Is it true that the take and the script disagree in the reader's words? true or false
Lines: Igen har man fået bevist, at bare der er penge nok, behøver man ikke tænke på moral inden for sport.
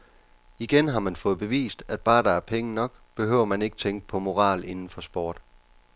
false